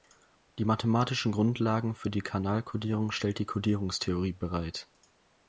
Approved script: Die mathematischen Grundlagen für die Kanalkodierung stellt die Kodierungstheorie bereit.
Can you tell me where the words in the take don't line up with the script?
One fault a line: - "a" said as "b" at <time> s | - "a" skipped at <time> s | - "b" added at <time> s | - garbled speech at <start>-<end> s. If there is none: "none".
none